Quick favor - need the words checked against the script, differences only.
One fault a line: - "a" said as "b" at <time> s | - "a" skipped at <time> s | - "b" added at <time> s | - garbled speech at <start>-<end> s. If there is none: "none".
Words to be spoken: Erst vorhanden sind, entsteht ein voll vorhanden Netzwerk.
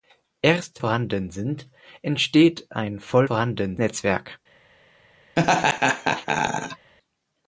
none